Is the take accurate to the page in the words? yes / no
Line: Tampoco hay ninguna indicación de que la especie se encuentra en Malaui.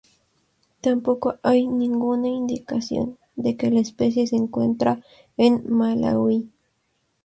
yes